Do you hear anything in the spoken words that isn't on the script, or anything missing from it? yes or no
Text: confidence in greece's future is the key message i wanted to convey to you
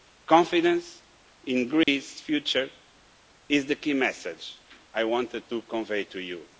no